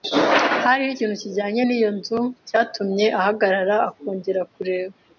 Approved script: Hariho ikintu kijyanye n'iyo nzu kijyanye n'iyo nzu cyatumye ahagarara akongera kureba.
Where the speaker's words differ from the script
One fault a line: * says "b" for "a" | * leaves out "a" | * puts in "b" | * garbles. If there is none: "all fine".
* leaves out "kijyanye n'iyo nzu"